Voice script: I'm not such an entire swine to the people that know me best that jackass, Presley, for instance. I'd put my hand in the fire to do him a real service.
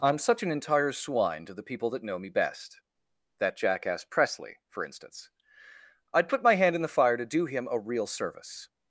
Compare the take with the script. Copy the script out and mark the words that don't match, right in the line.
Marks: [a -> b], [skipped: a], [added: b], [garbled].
I'm [skipped: not] such an entire swine to the people that know me best that jackass, Presley, for instance. I'd put my hand in the fire to do him a real service.